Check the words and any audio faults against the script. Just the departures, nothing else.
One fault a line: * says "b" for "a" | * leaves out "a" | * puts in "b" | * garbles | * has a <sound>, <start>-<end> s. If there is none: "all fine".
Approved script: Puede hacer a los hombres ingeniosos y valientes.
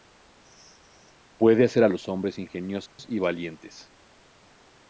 * has a dropout, 2.9-3.0 s